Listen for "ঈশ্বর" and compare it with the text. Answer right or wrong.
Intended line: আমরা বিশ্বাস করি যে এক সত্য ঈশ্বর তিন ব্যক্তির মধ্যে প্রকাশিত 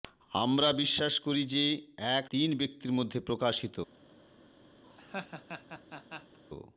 wrong